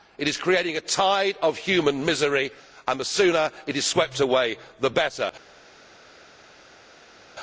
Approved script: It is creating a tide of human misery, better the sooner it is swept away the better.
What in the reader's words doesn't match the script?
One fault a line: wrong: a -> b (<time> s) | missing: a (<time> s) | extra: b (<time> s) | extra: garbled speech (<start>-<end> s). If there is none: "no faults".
wrong: better -> and (2.9 s)